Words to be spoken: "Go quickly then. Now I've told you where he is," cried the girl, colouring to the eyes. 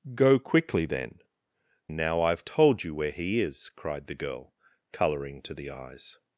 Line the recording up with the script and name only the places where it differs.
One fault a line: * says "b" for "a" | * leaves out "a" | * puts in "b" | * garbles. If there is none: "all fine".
all fine